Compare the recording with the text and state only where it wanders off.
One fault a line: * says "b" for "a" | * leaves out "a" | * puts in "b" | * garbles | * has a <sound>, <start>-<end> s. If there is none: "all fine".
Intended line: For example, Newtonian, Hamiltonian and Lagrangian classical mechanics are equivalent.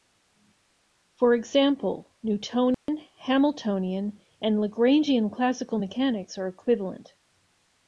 * has a dropout, 2.7-2.9 s